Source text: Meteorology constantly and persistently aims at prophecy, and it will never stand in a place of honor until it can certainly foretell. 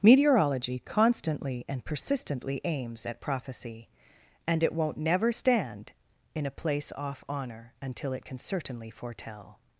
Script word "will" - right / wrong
wrong